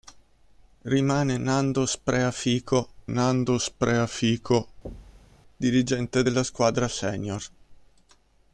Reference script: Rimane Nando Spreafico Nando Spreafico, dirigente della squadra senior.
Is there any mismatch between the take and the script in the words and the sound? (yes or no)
yes